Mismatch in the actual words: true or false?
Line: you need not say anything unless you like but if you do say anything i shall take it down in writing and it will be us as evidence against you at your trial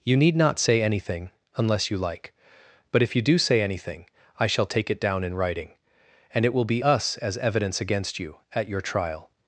false